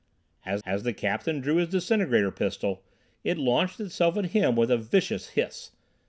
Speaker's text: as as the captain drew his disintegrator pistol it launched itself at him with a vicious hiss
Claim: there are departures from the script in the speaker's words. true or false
false